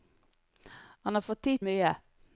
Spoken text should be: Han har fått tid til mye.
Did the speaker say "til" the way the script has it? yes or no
no